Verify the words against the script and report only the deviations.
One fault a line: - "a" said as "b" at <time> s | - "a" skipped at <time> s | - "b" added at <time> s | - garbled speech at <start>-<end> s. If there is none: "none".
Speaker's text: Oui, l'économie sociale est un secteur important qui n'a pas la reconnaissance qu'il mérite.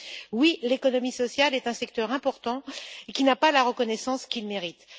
none